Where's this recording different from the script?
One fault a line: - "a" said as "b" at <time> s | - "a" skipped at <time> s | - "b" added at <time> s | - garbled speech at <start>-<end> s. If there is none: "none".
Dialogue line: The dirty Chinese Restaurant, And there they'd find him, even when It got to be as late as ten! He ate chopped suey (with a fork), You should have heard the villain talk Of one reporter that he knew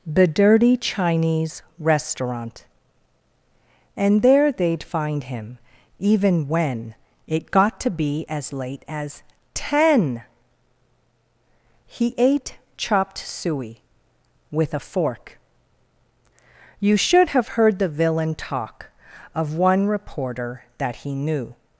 none